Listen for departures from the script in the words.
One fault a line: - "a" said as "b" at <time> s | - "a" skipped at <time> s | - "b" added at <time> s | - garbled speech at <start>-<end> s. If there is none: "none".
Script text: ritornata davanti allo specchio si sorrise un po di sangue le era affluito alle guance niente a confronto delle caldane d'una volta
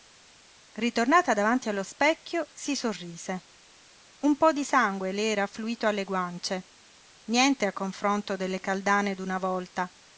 none